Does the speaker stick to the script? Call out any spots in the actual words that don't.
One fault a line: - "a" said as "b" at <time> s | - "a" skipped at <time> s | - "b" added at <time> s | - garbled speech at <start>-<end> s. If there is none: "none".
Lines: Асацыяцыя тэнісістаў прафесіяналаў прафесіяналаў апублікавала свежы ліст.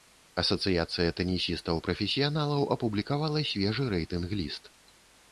- "прафесіяналаў" skipped at 2.6 s
- "рэйтынг" added at 4.0 s